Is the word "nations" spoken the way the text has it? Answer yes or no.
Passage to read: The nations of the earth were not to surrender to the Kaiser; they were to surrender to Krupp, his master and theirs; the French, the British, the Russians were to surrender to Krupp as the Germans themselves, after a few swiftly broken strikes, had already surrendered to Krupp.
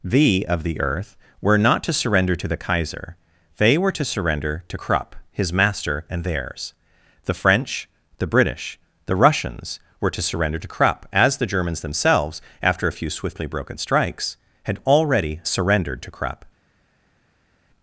no